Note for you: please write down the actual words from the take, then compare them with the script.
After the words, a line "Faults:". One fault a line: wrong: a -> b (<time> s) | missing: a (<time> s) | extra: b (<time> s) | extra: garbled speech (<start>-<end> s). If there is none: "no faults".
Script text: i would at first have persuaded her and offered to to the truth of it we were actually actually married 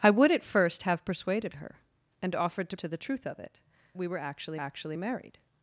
i would at first have persuaded her and offered to to the truth of it we were actually actually married
Faults:
no faults